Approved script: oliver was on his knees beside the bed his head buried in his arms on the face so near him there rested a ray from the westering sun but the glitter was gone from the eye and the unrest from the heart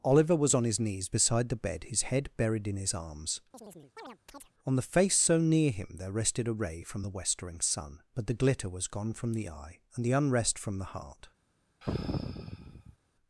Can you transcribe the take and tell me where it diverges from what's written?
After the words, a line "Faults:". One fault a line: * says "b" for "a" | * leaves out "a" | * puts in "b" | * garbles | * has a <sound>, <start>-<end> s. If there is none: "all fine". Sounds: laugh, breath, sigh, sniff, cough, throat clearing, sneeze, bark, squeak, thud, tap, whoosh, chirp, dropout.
oliver was on his knees beside the bed his head buried in his arms on the face so near him there rested a ray from the westering sun but the glitter was gone from the eye and the unrest from the heart
Faults:
* has a chirp, 3.5-4.5 s
* has a sigh, 11.8-13.0 s